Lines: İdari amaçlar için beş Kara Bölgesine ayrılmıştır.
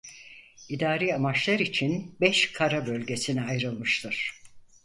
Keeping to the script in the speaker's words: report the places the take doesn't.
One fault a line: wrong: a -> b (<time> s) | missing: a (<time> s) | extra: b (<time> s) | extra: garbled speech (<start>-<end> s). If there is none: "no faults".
no faults